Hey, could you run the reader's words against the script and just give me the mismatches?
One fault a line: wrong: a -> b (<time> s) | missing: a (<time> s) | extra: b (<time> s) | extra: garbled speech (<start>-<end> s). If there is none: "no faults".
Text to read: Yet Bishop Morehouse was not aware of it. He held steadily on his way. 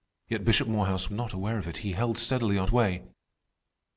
missing: was (1.1 s)
missing: his (2.7 s)